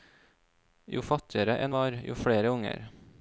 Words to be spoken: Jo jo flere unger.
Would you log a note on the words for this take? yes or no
yes